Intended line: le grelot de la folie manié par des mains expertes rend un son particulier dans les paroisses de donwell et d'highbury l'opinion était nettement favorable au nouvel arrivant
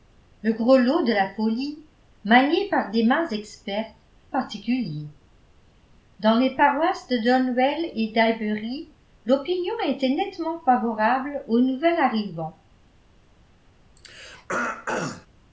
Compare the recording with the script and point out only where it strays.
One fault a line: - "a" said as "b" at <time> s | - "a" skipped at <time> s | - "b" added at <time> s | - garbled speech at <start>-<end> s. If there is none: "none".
- "rend un son" skipped at 4.0 s